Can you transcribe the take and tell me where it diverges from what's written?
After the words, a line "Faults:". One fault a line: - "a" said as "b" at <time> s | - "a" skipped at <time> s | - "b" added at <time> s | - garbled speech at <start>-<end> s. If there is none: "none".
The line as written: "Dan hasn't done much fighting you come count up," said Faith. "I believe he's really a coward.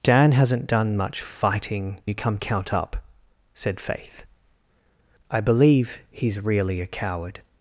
"Dan hasn't done much fighting you come count up," said Faith. "I believe he's really a coward.
Faults:
none